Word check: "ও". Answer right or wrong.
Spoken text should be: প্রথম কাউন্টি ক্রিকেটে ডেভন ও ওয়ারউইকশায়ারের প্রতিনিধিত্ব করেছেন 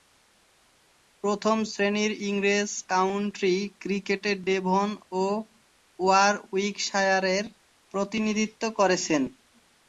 right